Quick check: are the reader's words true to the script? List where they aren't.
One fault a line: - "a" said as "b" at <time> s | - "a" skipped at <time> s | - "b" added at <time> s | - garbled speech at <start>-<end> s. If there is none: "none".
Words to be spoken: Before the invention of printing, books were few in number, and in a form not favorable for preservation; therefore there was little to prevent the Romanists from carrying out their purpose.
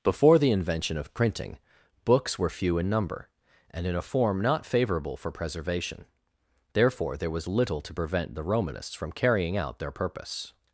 none